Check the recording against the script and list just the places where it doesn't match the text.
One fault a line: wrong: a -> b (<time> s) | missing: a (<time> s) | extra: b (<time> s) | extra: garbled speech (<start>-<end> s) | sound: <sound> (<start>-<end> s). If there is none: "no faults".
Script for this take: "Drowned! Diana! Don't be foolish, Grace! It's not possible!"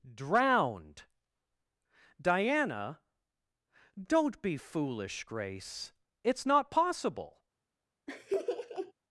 sound: laugh (8.1-8.9 s)